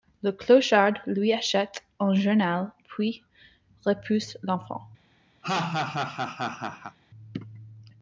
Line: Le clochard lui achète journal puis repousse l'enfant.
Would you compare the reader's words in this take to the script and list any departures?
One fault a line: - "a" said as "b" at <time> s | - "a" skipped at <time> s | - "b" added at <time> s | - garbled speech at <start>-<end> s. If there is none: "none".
- "un" added at 2.0 s